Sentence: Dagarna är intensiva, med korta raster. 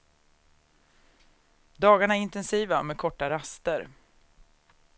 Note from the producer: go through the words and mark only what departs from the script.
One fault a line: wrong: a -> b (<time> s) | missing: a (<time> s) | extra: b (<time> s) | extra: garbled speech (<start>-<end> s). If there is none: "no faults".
no faults